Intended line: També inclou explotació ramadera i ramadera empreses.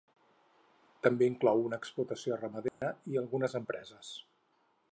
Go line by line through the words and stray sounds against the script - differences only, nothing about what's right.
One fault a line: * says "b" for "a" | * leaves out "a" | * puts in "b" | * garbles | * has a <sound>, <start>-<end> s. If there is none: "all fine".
* puts in "una"
* has a dropout, 2.7-2.8 s
* says "algunes" for "ramadera"